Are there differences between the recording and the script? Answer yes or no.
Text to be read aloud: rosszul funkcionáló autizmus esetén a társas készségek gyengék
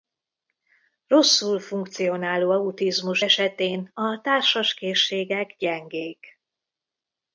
no